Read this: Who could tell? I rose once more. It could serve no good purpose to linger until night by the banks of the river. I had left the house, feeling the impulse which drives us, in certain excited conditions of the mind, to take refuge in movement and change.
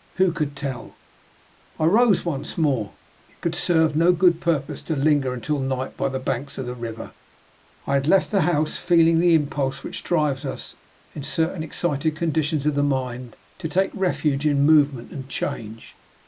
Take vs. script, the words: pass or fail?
pass